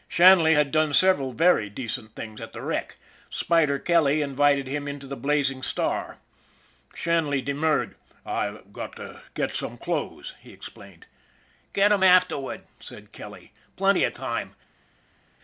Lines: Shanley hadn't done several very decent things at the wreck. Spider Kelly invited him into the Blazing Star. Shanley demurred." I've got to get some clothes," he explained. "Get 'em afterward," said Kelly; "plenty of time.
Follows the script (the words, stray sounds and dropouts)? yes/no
no